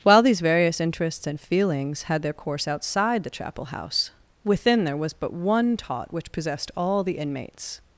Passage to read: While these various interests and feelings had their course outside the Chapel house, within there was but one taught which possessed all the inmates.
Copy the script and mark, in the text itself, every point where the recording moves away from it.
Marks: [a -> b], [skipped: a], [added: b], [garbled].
While these various interests and feelings had their course outside the Chapel house, within there was but one taught which possessed all the inmates.